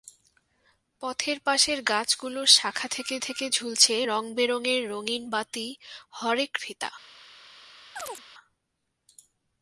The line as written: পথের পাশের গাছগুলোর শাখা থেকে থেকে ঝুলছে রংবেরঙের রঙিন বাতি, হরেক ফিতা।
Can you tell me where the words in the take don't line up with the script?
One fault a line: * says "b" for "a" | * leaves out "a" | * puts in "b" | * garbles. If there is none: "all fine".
all fine